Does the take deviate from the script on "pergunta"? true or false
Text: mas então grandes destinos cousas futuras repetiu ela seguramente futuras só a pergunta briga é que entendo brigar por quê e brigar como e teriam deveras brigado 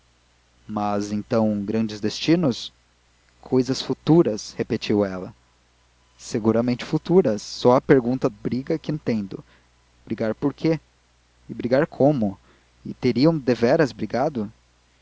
false